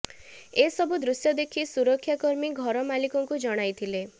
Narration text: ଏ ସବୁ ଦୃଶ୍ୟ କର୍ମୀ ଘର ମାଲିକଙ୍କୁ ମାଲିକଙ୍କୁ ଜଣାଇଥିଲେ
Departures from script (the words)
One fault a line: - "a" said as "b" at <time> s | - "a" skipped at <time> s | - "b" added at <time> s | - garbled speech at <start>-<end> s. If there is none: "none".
- "ଦେଖି ସୁରକ୍ଷା" added at 1.4 s
- "ମାଲିକଙ୍କୁ" skipped at 3.4 s